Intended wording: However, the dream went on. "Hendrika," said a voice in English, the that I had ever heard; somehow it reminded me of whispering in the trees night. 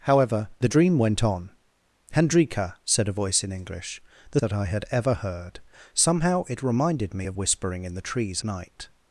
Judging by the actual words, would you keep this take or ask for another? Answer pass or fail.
pass